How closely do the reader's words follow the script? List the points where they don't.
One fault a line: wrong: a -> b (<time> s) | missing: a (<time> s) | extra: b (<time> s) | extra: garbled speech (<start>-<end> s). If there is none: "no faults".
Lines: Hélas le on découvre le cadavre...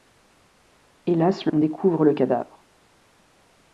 no faults